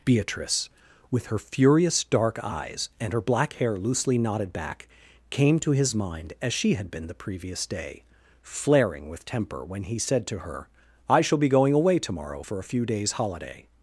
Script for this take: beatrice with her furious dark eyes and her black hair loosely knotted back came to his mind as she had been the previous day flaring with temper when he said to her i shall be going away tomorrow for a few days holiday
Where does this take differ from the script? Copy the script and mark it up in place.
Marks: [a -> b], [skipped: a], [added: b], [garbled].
beatrice with her furious dark eyes and her black hair loosely knotted back came to his mind as she had been the previous day flaring with temper when he said to her i shall be going away tomorrow for a few days holiday